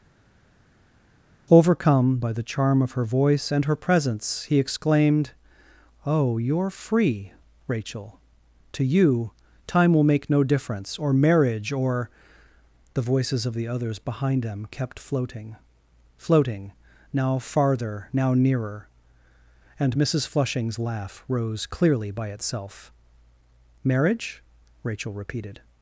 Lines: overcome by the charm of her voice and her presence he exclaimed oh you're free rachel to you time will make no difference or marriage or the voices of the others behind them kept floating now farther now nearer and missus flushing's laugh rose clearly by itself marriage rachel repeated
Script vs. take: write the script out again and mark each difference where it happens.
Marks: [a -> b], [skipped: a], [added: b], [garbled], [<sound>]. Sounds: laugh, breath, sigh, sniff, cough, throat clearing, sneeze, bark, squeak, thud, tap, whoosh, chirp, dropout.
overcome by the charm of her voice and her presence he exclaimed oh you're free rachel to you time will make no difference or marriage or the voices of the others behind them kept floating [added: floating] now farther now nearer and missus flushing's laugh rose clearly by itself marriage rachel repeated